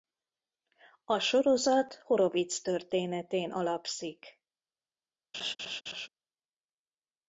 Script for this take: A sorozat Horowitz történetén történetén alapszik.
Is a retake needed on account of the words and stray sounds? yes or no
yes